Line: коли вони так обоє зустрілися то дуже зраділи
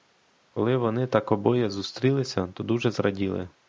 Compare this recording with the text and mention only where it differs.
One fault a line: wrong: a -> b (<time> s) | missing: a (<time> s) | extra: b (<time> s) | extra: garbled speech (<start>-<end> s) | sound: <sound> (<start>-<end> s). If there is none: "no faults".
no faults